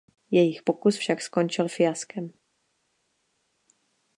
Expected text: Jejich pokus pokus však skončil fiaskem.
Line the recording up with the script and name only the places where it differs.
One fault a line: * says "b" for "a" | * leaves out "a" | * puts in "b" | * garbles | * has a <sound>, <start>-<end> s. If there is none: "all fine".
* leaves out "pokus"